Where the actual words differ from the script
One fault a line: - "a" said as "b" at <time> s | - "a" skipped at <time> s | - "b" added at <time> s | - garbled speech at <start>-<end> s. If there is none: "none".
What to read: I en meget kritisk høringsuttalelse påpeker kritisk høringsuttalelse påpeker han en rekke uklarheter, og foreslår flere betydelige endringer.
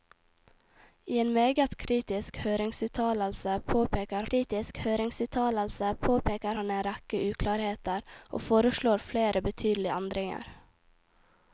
none